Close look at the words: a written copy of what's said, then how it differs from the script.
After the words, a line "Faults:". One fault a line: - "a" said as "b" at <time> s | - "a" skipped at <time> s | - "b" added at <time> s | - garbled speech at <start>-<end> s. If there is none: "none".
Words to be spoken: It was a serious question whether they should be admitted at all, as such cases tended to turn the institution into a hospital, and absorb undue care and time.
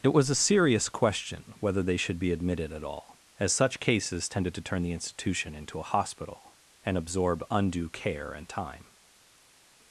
It was a serious question whether they should be admitted at all, as such cases tended to turn the institution into a hospital, and absorb undue care and time.
Faults:
none